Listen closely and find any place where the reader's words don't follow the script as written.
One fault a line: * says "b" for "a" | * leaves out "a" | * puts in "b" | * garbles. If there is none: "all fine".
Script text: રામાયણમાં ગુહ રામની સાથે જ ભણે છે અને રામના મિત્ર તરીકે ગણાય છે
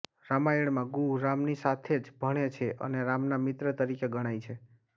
all fine